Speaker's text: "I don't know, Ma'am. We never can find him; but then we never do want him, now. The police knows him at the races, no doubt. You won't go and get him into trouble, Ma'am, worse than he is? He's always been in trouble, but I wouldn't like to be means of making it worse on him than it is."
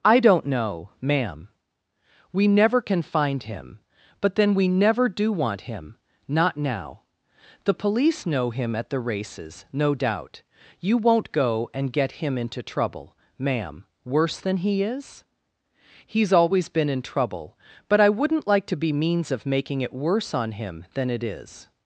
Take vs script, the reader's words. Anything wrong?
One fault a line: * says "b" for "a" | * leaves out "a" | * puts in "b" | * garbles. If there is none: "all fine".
* puts in "not"
* says "know" for "knows"